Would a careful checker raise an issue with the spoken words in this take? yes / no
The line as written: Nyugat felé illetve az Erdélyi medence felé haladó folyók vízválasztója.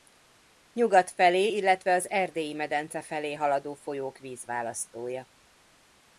no